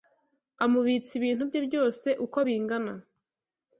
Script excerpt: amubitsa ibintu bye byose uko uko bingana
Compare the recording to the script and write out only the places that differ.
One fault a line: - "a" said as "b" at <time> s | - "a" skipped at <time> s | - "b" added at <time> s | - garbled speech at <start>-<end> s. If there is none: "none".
- "uko" skipped at 2.4 s